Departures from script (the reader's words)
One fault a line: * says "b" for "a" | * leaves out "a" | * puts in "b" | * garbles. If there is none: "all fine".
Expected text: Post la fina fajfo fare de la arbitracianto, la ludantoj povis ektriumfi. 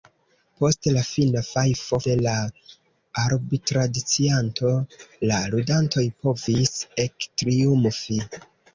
* leaves out "fare"